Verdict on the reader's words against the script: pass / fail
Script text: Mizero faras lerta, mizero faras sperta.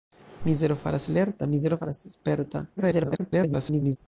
fail